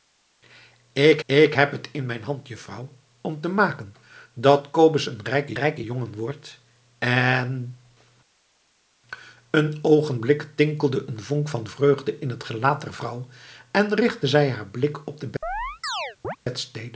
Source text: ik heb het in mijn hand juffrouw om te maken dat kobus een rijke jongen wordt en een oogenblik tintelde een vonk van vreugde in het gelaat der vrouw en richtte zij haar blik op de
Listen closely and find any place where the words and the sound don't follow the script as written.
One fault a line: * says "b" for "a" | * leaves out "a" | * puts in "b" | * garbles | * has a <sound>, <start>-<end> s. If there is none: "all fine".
* puts in "ik"
* puts in "rijke"
* has a chirp, 15.4-16.4 s